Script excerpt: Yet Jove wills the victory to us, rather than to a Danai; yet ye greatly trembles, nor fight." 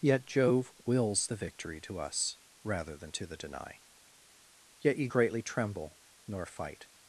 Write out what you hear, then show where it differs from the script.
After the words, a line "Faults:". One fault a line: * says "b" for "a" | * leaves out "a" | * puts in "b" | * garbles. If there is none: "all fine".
Yet Jove wills the victory to us, rather than to the Danai; yet ye greatly tremble, nor fight."
Faults:
* says "the" for "a"
* says "tremble" for "trembles"